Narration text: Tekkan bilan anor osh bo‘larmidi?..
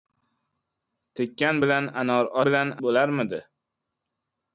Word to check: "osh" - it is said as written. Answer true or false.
false